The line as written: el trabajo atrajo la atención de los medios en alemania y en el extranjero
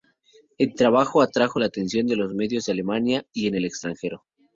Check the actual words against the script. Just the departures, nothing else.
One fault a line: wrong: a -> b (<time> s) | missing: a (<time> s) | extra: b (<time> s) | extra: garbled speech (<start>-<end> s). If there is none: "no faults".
no faults